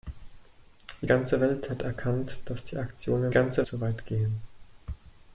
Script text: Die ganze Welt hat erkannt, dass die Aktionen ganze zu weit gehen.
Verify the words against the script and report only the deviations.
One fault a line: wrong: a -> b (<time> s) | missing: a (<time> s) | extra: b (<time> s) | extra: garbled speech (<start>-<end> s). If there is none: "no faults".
no faults